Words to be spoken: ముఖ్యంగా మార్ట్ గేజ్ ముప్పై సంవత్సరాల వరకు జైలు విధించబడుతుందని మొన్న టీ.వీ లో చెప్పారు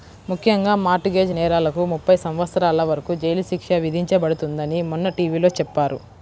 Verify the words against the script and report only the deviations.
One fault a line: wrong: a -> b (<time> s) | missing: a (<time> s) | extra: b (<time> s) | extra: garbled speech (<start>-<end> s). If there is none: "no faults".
extra: నేరాలకు (1.3 s)
extra: శిక్ష (3.5 s)